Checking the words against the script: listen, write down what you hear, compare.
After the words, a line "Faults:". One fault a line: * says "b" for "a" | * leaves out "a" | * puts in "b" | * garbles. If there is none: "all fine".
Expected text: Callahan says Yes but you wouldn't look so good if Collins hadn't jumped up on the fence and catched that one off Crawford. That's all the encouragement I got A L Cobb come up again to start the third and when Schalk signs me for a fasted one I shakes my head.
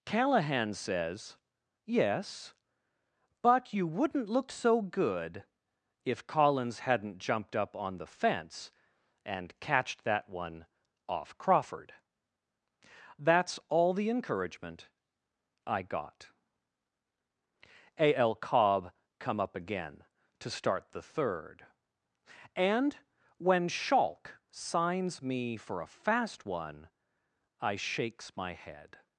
Callahan says Yes but you wouldn't look so good if Collins hadn't jumped up on the fence and catched that one off Crawford. That's all the encouragement I got A L Cobb come up again to start the third and when Schalk signs me for a fast one I shakes my head.
Faults:
* says "fast" for "fasted"